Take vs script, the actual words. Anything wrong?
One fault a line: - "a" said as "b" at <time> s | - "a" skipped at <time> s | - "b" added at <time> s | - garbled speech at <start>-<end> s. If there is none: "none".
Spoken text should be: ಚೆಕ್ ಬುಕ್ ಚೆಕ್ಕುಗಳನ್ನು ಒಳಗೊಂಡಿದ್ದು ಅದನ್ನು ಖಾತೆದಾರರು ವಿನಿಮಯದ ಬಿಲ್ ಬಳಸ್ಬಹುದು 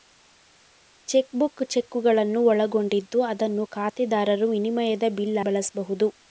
none